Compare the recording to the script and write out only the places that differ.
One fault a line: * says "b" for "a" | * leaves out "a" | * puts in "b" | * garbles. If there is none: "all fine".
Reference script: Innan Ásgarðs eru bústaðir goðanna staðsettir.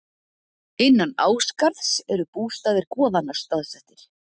all fine